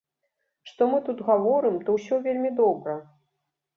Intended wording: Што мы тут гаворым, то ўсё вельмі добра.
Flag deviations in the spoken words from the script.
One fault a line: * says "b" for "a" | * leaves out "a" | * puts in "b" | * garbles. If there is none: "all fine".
all fine